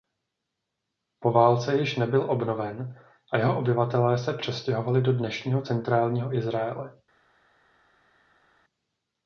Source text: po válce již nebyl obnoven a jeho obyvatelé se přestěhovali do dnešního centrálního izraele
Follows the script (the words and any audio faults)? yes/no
yes